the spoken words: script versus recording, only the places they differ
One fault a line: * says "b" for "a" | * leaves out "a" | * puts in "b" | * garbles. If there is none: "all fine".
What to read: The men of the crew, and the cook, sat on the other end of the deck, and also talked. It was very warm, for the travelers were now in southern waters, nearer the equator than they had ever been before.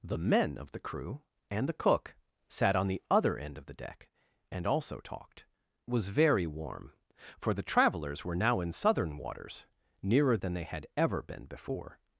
* leaves out "It"
* leaves out "the equator"